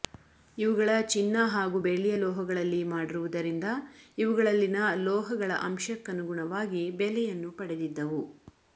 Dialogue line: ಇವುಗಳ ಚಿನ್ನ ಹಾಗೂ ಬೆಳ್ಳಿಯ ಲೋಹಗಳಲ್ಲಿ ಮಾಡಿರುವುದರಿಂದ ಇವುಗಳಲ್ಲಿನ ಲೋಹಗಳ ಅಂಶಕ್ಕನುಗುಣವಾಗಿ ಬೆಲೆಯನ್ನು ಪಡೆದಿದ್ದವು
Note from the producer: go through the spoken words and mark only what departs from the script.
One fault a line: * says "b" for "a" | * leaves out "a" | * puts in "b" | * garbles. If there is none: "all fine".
all fine